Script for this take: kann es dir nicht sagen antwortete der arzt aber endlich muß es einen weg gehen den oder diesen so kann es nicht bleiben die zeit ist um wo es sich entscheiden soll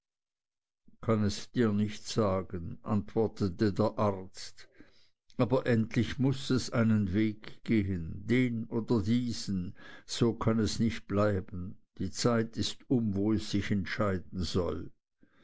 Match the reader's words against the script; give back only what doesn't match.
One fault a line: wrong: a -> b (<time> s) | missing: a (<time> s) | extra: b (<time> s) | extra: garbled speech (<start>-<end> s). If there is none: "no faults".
no faults